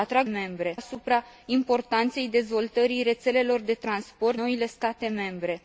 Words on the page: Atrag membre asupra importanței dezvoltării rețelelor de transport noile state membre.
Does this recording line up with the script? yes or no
yes